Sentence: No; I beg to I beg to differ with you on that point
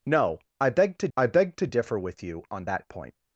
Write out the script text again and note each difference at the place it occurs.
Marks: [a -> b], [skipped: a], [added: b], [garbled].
No; I beg to I beg to differ with you on that point